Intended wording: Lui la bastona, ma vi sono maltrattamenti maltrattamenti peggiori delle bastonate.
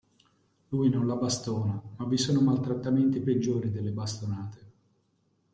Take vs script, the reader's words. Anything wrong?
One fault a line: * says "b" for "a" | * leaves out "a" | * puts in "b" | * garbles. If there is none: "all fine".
* puts in "non"
* leaves out "maltrattamenti"